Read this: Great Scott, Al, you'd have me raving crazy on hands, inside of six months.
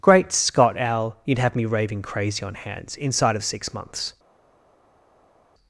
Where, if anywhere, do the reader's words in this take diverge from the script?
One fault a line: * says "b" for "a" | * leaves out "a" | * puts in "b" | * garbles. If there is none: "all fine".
all fine